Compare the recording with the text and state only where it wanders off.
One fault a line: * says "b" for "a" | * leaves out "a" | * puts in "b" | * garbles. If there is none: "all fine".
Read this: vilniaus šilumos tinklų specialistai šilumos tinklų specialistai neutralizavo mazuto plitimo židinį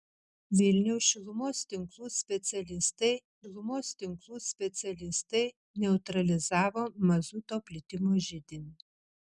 all fine